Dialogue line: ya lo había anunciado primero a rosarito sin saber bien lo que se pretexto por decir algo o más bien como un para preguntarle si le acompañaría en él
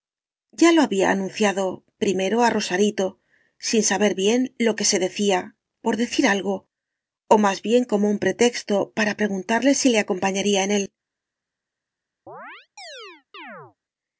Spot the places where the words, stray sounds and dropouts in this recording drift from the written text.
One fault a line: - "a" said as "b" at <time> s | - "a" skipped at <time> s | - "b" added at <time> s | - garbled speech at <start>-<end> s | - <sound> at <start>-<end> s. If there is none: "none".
- "pretexto" said as "decía" at 5.0 s
- "pretexto" added at 8.2 s
- chirp at 12.3-13.8 s